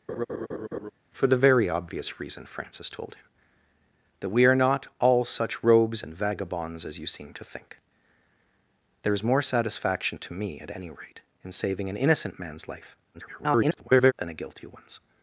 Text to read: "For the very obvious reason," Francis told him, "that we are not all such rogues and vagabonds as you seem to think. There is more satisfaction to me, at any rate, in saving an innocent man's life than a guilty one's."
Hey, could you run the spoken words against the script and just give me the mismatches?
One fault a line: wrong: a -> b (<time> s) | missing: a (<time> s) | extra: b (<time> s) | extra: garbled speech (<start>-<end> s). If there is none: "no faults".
extra: garbled speech (13.1-14.1 s)